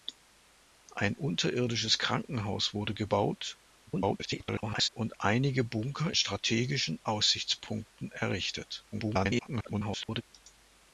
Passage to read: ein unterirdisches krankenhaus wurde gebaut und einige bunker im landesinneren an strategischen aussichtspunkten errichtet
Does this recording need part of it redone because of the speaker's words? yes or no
yes